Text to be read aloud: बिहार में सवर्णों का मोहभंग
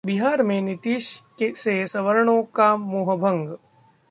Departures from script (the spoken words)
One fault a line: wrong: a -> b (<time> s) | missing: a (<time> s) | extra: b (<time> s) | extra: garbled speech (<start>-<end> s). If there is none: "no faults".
extra: नीतीश से (0.6 s)